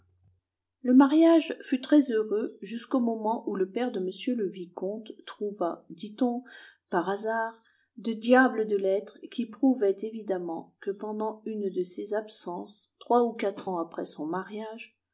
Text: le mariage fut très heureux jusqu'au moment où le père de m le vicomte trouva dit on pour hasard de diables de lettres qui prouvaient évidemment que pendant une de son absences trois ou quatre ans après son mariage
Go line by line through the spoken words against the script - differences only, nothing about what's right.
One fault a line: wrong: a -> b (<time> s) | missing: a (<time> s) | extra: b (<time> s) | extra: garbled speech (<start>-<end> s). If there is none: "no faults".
wrong: pour -> par (6.9 s)
wrong: son -> ses (11.8 s)